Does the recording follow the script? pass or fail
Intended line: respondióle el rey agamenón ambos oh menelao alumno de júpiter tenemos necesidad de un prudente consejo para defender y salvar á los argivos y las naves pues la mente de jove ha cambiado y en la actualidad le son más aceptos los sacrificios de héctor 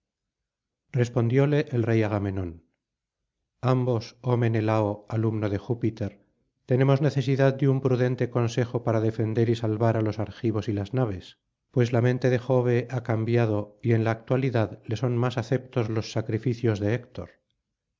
pass